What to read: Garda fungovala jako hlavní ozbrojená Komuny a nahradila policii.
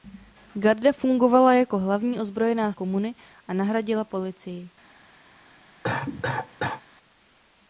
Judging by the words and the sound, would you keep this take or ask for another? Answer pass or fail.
fail